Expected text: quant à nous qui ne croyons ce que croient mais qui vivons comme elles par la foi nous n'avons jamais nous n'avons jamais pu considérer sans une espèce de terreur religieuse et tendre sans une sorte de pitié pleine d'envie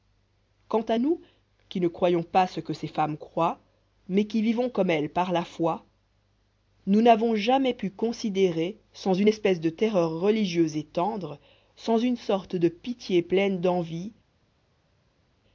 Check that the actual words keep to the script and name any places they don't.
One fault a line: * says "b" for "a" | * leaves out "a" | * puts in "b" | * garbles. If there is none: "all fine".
* puts in "pas"
* puts in "ces femmes"
* leaves out "nous n'avons jamais"